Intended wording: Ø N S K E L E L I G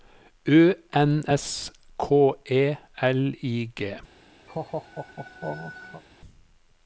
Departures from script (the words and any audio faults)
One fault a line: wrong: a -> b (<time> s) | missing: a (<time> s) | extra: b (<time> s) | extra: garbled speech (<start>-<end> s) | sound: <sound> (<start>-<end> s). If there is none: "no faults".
missing: E L (3.3 s)
sound: laugh (4.5-6.0 s)